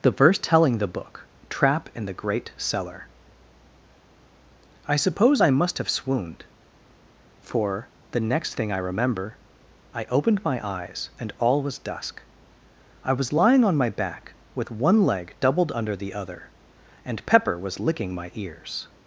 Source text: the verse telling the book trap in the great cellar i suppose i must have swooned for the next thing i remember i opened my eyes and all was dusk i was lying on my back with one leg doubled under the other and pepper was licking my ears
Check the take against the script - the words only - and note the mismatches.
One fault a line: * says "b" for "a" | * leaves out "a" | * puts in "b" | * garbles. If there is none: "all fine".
all fine